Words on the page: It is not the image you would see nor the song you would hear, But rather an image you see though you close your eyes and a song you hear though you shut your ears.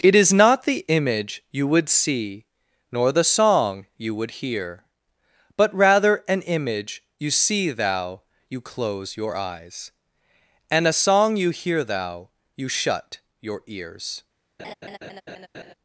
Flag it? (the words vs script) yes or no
yes